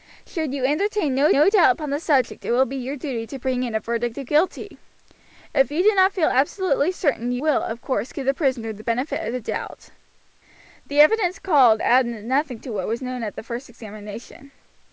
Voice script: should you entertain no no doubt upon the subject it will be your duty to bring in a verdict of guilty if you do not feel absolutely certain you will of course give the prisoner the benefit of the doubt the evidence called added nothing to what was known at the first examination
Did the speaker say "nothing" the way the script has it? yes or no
yes